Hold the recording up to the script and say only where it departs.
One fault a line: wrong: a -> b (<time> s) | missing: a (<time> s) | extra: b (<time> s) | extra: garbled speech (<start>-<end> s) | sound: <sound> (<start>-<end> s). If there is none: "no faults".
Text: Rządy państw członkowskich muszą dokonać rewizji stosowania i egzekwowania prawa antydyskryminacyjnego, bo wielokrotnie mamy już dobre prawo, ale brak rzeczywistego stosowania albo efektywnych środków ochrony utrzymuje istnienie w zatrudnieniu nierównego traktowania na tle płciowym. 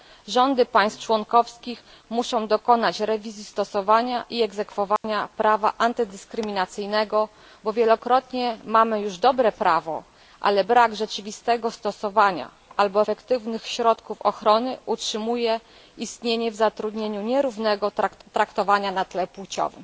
sound: dropout (5.0-5.0 s)